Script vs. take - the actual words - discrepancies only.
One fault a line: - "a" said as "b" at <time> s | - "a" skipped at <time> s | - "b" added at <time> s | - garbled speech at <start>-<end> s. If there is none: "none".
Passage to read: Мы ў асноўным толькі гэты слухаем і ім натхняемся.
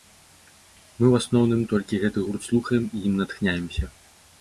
- "гурт" added at 2.3 s